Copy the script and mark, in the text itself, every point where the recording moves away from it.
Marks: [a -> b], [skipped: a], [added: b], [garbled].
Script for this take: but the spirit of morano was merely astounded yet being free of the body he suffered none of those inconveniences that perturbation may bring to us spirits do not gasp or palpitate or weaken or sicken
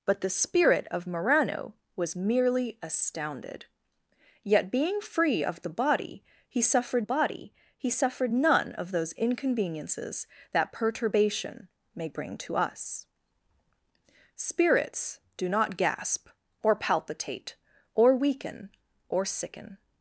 but the spirit of morano was merely astounded yet being free of the body he suffered [added: body he suffered] none of those inconveniences that perturbation may bring to us spirits do not gasp or palpitate or weaken or sicken